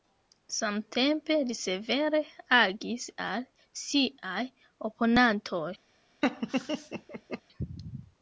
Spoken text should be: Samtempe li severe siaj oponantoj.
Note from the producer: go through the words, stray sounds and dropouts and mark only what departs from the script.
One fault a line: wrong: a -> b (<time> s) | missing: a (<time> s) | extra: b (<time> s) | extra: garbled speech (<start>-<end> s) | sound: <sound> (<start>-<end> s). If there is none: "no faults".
extra: agis al (2.6 s)
sound: laugh (6.2-7.4 s)